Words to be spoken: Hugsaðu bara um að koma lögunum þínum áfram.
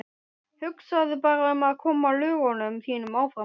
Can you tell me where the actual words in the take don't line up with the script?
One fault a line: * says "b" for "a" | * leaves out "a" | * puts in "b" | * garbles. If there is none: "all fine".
all fine